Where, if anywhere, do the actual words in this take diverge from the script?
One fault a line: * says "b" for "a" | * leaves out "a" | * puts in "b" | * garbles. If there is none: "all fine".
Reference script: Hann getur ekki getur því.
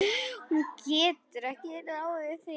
* says "Hún" for "Hann"
* says "ráðið" for "getur"